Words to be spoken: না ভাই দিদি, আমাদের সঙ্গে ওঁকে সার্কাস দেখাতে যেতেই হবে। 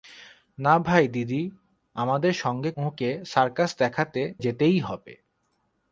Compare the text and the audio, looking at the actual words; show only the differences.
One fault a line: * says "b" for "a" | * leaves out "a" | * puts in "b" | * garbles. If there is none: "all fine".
all fine